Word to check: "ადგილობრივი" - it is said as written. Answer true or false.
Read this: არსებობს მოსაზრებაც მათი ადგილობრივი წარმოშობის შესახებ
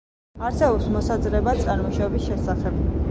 false